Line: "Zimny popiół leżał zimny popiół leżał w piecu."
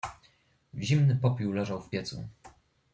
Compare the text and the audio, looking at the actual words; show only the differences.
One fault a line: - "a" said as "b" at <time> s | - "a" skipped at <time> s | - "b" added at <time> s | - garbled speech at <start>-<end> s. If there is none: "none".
- "zimny popiół leżał" skipped at 1.8 s